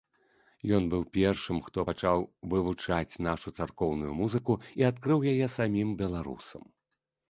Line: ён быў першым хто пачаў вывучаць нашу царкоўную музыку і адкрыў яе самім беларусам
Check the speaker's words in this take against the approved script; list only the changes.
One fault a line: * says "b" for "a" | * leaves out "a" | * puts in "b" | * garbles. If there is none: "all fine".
all fine